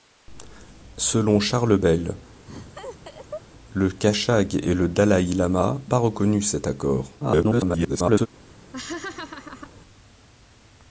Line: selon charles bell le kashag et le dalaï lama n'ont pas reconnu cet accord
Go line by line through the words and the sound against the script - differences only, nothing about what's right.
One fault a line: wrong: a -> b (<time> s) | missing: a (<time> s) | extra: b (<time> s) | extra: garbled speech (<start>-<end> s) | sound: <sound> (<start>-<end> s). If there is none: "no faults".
sound: laugh (2.5-3.4 s)
missing: n'ont (5.8 s)
extra: garbled speech (7.2-8.3 s)
sound: laugh (8.7-9.7 s)